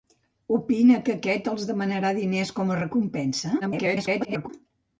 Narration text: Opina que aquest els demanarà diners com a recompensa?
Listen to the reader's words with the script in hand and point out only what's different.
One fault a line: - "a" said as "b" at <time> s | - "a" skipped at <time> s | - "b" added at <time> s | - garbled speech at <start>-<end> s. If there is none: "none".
- garbled speech at 3.6-4.5 s